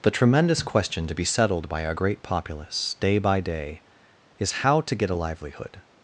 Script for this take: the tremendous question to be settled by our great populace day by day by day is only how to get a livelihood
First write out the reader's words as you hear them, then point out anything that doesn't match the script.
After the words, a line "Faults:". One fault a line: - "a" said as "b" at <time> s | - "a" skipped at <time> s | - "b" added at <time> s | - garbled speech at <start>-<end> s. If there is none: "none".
the tremendous question to be settled by our great populace day by day is how to get a livelihood
Faults:
- "by day" skipped at 3.8 s
- "only" skipped at 4.6 s